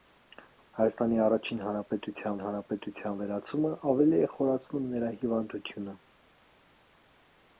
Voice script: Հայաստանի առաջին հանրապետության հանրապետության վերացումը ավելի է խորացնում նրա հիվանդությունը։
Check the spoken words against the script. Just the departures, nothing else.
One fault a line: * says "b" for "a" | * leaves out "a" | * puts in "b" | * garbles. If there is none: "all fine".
all fine